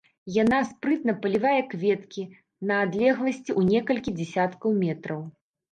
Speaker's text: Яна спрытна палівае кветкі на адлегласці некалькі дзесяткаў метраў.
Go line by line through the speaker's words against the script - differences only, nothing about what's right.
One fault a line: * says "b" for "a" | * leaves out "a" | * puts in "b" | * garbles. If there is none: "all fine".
* puts in "ў"